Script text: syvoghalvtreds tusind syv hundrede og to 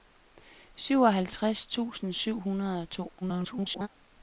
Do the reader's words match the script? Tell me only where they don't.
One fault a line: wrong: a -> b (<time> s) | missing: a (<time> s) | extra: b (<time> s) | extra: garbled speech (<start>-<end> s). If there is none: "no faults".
extra: garbled speech (3.2-3.9 s)